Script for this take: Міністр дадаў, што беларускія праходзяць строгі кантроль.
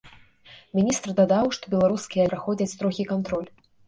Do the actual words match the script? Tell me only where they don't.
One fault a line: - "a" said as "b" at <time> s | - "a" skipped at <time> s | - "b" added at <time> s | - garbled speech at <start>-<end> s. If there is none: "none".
none